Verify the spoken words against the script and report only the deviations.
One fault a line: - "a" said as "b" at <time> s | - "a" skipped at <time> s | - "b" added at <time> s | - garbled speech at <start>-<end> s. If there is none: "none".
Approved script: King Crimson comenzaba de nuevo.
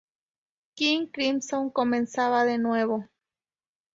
none